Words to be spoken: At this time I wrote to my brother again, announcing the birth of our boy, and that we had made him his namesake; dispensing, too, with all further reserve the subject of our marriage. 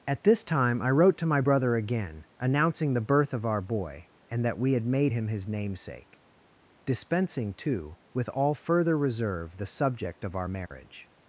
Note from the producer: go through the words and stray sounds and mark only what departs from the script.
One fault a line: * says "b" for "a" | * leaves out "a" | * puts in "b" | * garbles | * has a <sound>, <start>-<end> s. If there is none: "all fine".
* has a dropout, 10.7-10.7 s